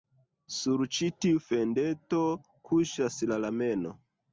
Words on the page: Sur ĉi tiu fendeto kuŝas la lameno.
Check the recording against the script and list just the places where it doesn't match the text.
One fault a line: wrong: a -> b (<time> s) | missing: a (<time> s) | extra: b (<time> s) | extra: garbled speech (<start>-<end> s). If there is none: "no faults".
no faults